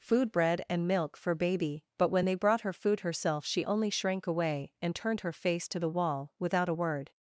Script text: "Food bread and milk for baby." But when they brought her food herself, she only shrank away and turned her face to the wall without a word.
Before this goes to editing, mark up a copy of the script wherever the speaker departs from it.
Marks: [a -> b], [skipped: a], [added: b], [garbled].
"Food bread and milk for baby." But when they brought her food herself, she only shrank away and turned her face to the wall without a word.